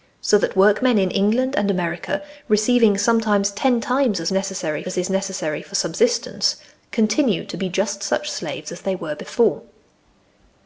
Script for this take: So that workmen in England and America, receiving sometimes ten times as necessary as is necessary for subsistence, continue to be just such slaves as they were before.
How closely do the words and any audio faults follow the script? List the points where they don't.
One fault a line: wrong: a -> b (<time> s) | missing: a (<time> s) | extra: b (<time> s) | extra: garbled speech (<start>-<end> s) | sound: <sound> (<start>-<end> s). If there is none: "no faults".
no faults